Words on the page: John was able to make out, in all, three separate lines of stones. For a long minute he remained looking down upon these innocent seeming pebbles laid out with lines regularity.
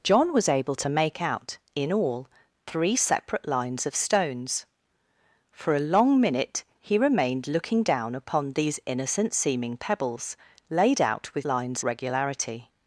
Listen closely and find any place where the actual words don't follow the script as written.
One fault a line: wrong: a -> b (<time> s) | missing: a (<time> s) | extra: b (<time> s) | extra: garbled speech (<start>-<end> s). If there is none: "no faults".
no faults